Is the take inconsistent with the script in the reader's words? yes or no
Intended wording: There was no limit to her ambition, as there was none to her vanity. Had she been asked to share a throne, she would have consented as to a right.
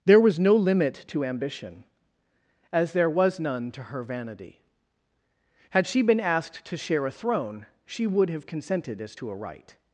yes